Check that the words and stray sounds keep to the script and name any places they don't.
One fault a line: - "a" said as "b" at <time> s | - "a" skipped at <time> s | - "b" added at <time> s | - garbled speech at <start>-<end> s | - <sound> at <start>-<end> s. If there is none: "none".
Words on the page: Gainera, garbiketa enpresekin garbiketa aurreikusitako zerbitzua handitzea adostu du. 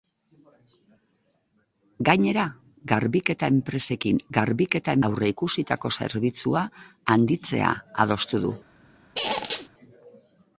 - squeak at 9.1-9.7 s